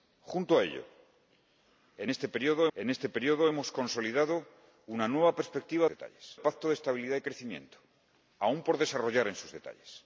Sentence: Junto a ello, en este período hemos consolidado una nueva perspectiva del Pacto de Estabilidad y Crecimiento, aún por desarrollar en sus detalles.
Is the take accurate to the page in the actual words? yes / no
no